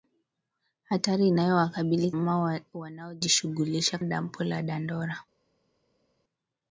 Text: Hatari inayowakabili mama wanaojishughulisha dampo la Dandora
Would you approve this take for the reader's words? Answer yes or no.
yes